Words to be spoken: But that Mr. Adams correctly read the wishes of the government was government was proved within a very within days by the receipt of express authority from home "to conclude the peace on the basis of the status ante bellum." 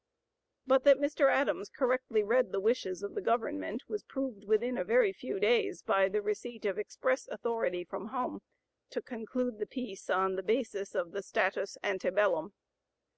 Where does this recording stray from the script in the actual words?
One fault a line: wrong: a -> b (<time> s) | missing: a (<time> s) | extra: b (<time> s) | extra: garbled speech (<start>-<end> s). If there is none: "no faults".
missing: government was (4.0 s)
wrong: within -> few (5.1 s)